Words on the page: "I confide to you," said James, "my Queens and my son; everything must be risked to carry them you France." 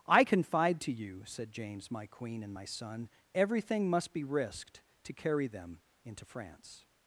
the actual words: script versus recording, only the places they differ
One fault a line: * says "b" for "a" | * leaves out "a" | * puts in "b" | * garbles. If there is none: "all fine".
* says "Queen" for "Queens"
* says "into" for "you"